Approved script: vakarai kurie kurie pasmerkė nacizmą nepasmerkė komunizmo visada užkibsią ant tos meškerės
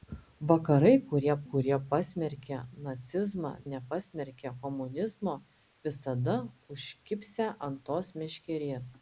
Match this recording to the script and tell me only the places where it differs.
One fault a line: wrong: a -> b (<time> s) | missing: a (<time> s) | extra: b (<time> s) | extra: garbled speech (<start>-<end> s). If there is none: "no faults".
no faults